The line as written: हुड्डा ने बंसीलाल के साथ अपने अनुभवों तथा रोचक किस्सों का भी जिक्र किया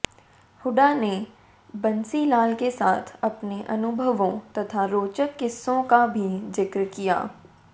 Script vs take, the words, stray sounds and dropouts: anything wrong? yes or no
no